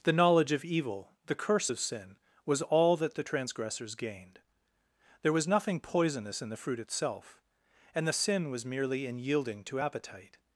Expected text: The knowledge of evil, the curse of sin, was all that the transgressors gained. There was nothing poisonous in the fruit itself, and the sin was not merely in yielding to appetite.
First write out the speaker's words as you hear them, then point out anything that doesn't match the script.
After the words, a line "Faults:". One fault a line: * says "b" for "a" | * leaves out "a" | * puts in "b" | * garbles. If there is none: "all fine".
The knowledge of evil, the curse of sin, was all that the transgressors gained. There was nothing poisonous in the fruit itself, and the sin was merely in yielding to appetite.
Faults:
* leaves out "not"